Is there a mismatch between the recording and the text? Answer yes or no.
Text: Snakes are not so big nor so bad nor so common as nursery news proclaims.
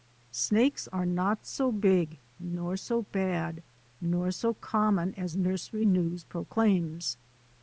no